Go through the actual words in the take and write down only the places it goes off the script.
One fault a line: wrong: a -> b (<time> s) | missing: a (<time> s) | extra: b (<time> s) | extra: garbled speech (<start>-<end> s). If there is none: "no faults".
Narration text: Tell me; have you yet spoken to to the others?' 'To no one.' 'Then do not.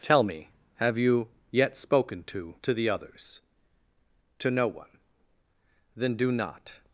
no faults